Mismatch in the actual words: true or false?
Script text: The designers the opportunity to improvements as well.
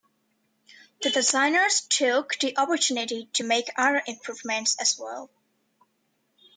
true